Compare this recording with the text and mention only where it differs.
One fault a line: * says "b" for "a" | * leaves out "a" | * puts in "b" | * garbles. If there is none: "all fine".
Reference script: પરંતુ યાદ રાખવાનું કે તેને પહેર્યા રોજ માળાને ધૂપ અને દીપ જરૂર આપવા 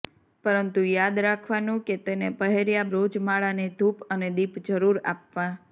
all fine